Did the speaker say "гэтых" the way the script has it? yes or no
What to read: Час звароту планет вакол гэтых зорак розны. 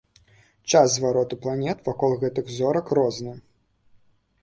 yes